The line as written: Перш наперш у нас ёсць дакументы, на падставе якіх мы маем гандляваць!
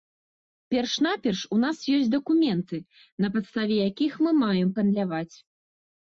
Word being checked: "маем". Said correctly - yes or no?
yes